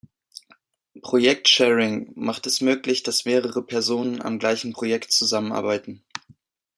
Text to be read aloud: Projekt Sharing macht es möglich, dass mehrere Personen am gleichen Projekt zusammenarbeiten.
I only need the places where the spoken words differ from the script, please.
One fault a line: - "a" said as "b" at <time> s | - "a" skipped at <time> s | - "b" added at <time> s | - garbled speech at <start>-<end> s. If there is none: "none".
none